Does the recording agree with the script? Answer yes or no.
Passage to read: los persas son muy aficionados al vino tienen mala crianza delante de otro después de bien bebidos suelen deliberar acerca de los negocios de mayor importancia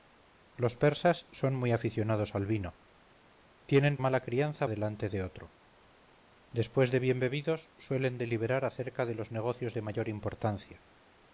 yes